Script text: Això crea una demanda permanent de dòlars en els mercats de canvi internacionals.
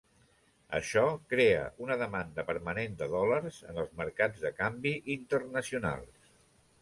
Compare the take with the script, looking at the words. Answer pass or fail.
pass